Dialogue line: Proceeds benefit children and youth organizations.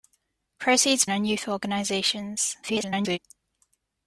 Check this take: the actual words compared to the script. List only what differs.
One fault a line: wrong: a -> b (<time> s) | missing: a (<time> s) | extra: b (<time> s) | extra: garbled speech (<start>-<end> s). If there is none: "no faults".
missing: benefit children (1.1 s)
extra: garbled speech (2.6-3.2 s)